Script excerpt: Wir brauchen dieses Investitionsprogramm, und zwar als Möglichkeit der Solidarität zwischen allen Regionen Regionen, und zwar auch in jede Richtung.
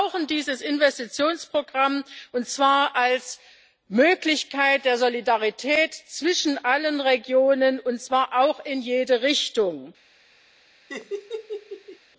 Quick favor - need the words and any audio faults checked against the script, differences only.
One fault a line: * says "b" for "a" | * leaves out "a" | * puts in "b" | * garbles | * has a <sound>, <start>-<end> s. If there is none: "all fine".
* leaves out "Regionen"
* has a laugh, 10.9-12.0 s